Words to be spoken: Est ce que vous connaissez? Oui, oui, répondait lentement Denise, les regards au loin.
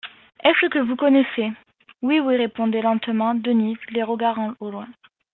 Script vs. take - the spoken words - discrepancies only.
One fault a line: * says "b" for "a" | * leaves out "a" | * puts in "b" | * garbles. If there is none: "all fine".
all fine